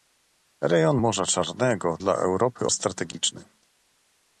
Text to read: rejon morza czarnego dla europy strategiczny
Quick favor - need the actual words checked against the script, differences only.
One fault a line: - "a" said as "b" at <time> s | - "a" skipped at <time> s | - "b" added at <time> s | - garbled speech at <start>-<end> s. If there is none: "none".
none